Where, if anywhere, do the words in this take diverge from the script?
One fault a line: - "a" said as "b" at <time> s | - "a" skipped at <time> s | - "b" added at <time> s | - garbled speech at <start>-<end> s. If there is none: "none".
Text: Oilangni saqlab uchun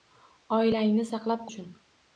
none